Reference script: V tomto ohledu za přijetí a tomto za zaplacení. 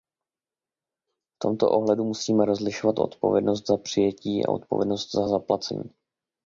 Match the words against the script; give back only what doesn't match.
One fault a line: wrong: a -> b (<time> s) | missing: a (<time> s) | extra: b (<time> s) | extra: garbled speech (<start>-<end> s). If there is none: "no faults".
extra: musíme rozlišovat odpovědnost (2.0 s)
wrong: tomto -> odpovědnost (4.5 s)